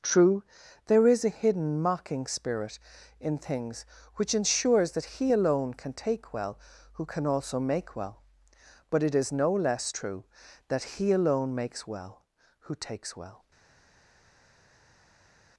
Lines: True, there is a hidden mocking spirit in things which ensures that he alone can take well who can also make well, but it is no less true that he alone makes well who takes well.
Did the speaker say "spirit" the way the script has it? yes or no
yes